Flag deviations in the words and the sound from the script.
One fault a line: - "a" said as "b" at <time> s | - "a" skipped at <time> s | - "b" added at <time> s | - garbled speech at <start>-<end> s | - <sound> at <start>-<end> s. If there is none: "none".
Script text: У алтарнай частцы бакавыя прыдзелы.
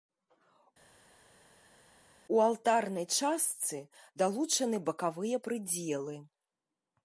- "далучаны" added at 4.2 s